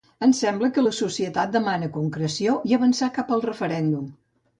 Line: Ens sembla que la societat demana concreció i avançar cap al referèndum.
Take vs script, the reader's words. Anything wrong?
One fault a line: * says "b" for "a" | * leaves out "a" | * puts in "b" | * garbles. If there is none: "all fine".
all fine